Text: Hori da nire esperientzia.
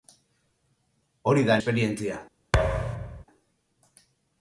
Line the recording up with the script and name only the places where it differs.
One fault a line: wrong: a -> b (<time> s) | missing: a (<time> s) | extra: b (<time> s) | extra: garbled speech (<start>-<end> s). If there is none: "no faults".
missing: nire (1.6 s)